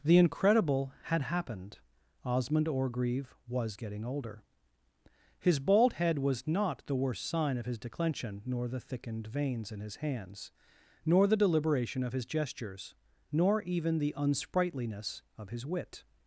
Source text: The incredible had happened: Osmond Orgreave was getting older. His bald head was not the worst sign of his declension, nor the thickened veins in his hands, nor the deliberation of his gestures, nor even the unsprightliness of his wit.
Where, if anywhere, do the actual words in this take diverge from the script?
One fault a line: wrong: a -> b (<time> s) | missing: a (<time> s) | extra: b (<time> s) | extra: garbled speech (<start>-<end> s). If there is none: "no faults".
no faults